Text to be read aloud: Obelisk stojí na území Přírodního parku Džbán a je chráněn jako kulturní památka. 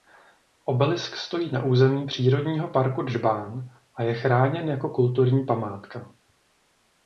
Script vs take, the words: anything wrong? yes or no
no